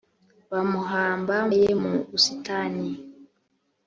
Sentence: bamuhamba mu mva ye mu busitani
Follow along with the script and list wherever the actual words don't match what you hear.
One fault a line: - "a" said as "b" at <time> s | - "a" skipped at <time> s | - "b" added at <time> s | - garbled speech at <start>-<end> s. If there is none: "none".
- "mu mva" skipped at 1.4 s